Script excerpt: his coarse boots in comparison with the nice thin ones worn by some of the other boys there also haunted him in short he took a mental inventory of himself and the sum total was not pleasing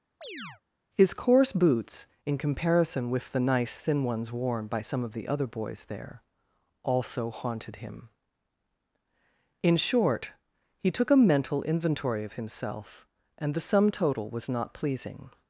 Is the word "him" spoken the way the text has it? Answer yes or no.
yes